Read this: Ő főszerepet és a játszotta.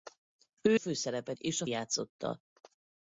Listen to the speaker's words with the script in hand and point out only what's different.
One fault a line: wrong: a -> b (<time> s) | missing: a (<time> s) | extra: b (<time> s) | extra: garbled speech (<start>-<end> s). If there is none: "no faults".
no faults